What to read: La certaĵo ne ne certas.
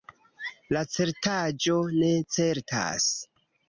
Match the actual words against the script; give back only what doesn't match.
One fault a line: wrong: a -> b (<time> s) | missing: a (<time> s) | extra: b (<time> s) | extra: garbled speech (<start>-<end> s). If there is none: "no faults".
missing: ne (2.1 s)